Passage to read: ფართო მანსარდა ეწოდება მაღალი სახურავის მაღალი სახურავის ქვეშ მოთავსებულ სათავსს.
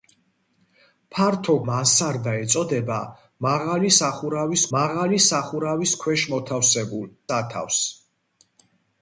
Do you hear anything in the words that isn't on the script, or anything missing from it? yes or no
no